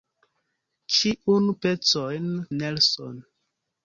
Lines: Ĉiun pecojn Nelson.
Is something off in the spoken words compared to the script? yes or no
no